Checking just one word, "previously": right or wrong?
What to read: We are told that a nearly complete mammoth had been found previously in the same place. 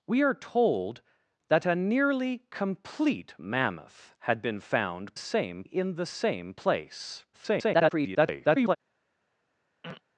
wrong